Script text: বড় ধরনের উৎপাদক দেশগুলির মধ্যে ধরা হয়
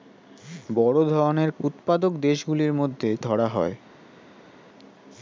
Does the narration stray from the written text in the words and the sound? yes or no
no